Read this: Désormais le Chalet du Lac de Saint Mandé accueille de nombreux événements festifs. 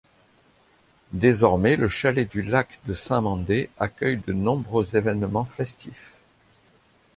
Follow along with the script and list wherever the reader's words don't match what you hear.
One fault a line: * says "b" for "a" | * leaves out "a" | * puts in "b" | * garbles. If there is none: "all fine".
all fine